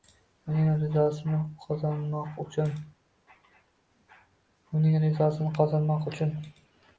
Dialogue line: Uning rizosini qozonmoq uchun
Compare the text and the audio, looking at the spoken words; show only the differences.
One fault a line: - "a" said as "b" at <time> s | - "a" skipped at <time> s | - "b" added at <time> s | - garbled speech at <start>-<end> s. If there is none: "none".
none